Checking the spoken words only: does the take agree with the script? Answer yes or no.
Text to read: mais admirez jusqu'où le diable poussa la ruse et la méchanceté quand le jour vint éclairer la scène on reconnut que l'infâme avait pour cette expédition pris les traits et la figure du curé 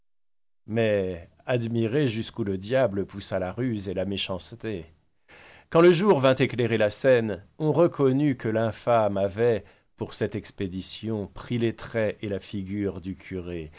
yes